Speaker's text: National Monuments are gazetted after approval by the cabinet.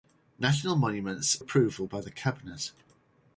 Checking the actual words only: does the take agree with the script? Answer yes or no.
no